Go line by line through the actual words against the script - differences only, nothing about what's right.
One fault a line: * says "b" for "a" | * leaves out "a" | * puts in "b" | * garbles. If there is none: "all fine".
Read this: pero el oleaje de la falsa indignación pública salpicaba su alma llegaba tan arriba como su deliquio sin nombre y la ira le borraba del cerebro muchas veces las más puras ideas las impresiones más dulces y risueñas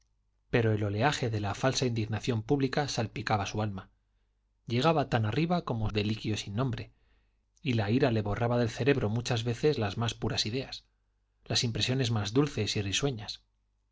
* leaves out "su"